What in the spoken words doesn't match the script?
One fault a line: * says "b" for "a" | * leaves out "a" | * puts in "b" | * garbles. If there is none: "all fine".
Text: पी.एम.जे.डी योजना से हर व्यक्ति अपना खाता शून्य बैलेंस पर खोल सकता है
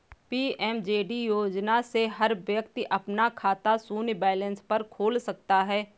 all fine